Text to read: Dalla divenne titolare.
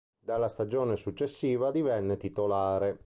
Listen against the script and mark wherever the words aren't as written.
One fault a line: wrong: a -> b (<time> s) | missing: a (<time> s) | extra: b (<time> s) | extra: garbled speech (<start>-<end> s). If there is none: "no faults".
extra: stagione successiva (0.5 s)